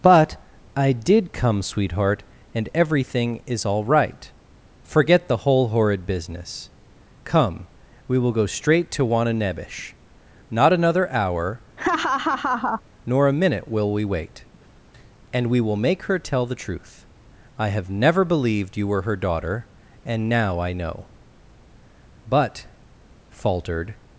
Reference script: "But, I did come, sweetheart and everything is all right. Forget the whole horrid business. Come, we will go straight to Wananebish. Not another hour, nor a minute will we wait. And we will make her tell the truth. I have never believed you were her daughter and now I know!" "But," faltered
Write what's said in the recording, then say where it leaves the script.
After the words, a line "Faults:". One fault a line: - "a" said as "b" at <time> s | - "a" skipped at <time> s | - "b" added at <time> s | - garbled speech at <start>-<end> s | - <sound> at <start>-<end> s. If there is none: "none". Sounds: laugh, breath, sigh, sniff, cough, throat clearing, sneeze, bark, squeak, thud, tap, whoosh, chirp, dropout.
"But, I did come, sweetheart and everything is all right. Forget the whole horrid business. Come, we will go straight to Wananebish. Not another hour, nor a minute will we wait. And we will make her tell the truth. I have never believed you were her daughter and now I know!" "But," faltered
Faults:
- laugh at 11.8-12.8 s